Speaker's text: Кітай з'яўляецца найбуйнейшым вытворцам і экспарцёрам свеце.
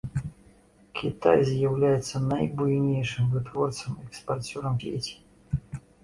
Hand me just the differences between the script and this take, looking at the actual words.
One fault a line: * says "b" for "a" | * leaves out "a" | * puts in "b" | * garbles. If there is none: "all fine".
all fine